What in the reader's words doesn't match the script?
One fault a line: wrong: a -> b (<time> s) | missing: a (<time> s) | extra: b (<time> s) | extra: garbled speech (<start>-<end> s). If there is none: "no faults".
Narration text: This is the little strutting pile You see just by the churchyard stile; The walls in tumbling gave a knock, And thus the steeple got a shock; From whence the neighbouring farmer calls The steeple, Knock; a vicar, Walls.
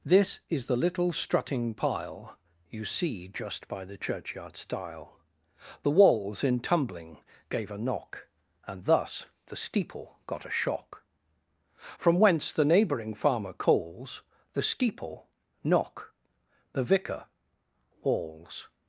wrong: a -> the (16.7 s)